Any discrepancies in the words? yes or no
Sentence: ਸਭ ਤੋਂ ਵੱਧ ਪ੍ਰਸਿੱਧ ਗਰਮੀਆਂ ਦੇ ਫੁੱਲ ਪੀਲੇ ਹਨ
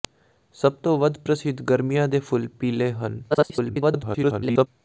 yes